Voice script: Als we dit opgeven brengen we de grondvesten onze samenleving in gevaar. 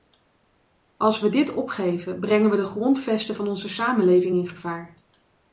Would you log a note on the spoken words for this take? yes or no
yes